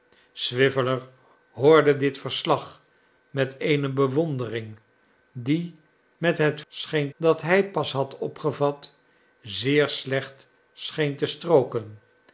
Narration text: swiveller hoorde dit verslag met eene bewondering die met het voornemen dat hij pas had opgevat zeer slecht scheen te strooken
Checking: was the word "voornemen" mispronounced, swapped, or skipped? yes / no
yes